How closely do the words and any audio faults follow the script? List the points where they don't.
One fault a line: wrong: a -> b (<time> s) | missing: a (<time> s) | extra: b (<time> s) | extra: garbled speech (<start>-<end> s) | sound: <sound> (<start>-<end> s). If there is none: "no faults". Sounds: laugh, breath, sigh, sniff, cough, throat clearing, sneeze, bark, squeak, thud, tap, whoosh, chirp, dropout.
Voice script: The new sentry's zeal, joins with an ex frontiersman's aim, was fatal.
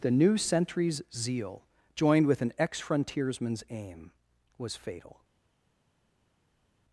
wrong: joins -> joined (1.9 s)